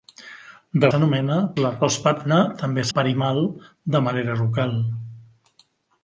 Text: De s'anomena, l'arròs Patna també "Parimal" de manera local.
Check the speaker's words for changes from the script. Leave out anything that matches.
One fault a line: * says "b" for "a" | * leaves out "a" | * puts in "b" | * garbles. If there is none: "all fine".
all fine